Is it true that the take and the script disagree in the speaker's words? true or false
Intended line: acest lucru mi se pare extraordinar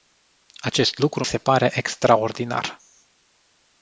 true